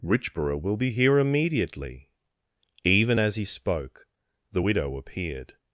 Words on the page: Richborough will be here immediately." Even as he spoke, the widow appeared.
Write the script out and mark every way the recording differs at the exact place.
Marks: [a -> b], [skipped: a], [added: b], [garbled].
Richborough will be here immediately." Even as he spoke, the widow appeared.